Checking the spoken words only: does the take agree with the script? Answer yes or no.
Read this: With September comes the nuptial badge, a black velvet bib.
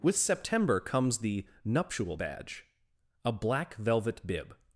yes